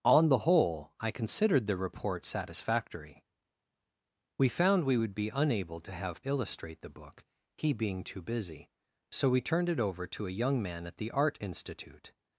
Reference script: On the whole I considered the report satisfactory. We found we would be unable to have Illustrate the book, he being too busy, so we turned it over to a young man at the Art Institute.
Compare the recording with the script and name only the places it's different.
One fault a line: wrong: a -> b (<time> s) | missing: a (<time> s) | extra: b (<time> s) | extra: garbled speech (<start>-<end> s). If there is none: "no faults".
no faults